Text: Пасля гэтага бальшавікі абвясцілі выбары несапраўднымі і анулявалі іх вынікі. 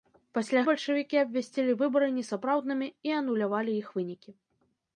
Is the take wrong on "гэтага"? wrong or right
wrong